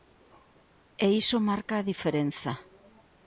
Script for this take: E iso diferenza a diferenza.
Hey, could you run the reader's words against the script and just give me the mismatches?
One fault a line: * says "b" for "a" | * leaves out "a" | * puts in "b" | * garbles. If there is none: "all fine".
* says "marca" for "diferenza"